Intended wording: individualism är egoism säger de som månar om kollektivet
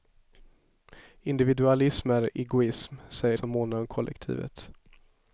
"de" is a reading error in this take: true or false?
true